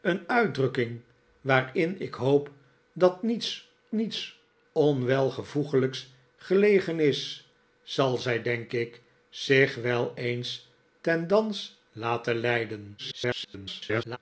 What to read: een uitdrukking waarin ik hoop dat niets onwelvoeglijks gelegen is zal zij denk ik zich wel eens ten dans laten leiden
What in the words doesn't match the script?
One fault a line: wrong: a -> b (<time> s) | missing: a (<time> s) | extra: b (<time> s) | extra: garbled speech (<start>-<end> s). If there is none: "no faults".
extra: niets (3.9 s)
extra: garbled speech (13.0-14.2 s)